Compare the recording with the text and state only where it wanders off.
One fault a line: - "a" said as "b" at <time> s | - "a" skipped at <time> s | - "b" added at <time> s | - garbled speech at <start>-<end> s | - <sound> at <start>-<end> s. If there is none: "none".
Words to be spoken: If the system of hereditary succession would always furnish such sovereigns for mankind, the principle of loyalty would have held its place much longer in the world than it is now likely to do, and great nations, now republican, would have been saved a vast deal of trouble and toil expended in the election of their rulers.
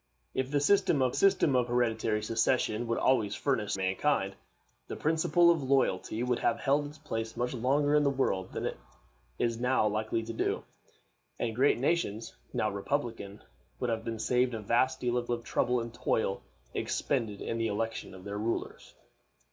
- "system of" added at 1.1 s
- "such sovereigns for" skipped at 3.7 s
- "of" added at 15.3 s